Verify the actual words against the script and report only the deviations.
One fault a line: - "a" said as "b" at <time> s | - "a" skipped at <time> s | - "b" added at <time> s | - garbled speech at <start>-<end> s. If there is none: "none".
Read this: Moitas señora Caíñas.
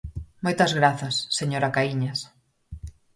- "grazas" added at 0.8 s